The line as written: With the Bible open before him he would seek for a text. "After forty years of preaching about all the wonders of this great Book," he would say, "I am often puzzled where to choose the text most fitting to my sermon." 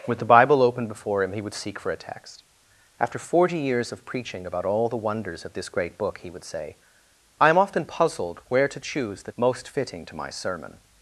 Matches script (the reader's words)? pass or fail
fail